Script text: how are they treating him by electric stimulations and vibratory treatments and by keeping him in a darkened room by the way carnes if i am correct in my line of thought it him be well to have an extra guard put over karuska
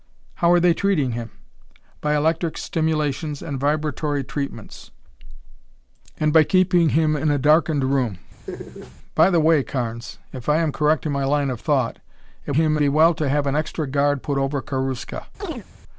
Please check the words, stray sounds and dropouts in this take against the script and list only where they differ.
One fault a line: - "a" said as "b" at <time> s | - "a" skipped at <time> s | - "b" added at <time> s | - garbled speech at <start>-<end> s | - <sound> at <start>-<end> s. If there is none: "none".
- laugh at 8.5-9.0 s
- chirp at 15.4-15.7 s